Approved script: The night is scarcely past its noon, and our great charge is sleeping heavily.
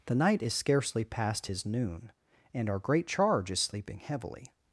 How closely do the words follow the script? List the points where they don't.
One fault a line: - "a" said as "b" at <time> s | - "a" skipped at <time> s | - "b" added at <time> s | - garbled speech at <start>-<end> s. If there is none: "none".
- "its" said as "his" at 1.4 s